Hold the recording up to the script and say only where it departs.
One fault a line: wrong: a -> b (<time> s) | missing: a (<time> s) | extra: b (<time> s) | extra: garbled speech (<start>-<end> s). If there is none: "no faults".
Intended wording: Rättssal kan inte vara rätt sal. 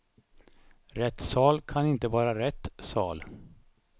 no faults